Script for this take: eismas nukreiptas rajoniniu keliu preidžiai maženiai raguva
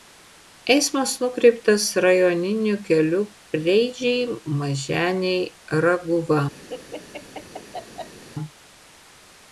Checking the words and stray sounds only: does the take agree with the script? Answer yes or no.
no